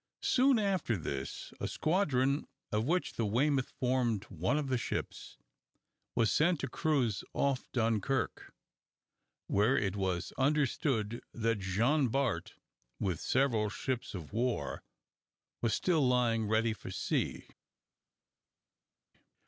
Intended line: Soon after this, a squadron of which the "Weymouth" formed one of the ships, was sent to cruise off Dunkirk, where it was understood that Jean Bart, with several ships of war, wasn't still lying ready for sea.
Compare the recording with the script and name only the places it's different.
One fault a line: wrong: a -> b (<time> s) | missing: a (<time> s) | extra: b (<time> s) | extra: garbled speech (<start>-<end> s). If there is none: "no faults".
wrong: wasn't -> was (15.6 s)